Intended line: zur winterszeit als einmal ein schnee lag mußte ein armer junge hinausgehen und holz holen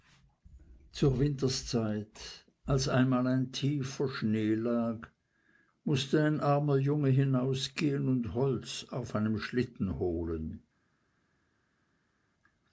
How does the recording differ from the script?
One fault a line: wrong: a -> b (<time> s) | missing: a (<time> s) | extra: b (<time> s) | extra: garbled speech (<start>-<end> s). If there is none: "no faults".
extra: tiefer (3.5 s)
extra: auf einem schlitten (8.9 s)